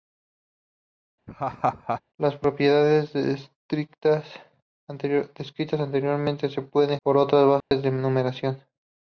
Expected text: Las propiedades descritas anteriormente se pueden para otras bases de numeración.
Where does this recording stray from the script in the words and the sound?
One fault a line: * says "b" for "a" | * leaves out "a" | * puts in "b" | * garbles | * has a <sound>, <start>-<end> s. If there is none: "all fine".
* has a laugh, 1.3-2.0 s
* has a dropout, 7.6-7.7 s